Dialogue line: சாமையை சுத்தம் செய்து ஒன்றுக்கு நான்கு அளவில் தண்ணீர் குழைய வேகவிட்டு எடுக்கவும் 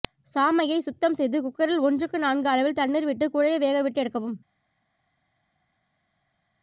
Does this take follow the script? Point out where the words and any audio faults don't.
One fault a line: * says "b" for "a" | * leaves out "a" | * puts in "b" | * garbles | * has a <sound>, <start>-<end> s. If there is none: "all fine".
* puts in "குக்கரில்"
* puts in "விட்டு"